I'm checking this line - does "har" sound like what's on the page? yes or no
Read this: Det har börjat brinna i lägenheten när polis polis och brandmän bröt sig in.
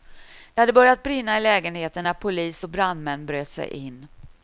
no